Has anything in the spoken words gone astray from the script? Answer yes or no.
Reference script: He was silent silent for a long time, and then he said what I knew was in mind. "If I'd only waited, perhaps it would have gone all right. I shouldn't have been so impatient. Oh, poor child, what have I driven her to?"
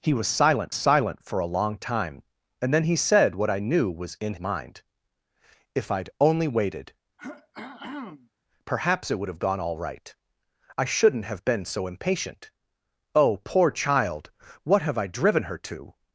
no